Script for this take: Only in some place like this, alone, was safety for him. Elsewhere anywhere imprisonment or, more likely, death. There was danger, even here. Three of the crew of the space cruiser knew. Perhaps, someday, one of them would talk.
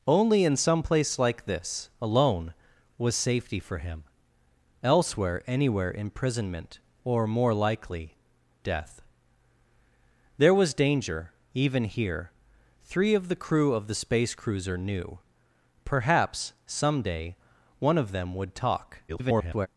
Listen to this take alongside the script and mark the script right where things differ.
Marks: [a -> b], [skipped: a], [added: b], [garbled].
Only in some place like this, alone, was safety for him. Elsewhere anywhere imprisonment or, more likely, death. There was danger, even here. Three of the crew of the space cruiser knew. Perhaps, someday, one of them would talk. [garbled]